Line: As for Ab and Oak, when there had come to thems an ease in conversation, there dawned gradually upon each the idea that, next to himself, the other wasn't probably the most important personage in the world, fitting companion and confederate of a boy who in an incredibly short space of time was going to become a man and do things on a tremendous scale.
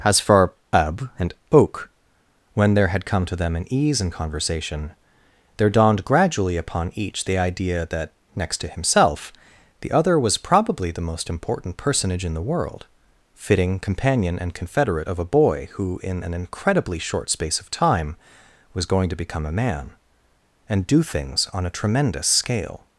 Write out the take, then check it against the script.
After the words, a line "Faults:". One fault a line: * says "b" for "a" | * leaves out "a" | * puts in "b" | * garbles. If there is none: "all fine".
As for Ab and Oak, when there had come to them an ease in conversation, there dawned gradually upon each the idea that, next to himself, the other was probably the most important personage in the world, fitting companion and confederate of a boy who in an incredibly short space of time was going to become a man and do things on a tremendous scale.
Faults:
* says "them" for "thems"
* says "was" for "wasn't"